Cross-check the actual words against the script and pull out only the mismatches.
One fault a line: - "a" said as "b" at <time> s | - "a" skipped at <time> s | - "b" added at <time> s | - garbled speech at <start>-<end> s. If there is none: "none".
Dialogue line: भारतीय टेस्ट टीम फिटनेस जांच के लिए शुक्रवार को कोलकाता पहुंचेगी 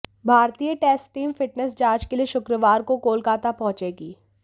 none